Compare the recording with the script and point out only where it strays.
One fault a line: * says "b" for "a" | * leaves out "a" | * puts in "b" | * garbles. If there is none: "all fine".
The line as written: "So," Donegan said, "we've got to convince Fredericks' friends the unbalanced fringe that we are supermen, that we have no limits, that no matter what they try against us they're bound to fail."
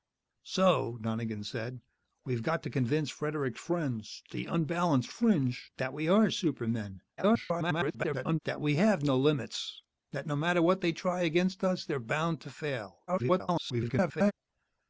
* garbles
* garbles